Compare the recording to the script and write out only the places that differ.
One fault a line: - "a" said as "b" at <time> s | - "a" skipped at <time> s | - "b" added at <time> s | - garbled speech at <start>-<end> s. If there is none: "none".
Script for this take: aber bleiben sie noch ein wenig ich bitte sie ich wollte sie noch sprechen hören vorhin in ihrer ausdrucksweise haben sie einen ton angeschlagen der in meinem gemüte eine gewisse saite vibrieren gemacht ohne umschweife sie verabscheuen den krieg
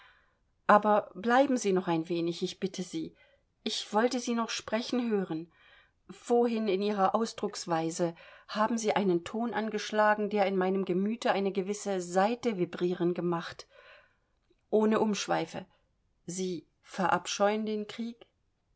none